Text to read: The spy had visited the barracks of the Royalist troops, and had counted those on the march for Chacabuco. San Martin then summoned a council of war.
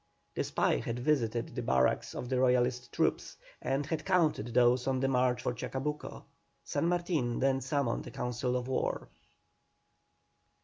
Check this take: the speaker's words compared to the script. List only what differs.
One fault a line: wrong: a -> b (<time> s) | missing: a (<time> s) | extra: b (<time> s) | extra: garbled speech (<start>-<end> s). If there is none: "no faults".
no faults